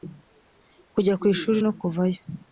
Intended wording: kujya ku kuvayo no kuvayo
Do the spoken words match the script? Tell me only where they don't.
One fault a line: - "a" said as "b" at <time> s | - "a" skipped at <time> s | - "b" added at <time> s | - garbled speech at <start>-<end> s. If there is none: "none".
- "kuvayo" said as "ishuri" at 1.3 s